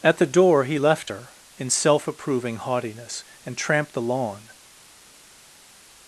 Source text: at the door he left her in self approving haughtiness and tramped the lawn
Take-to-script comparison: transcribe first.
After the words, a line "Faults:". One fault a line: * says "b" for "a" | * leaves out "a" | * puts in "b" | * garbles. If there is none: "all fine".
at the door he left her in self approving haughtiness and tramped the lawn
Faults:
all fine